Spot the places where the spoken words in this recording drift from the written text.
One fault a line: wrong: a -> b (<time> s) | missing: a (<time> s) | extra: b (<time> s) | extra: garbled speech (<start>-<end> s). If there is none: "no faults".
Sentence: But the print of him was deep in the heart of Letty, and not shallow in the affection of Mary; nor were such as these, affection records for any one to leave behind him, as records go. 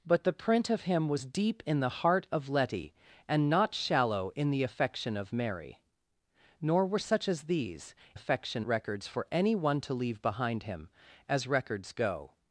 no faults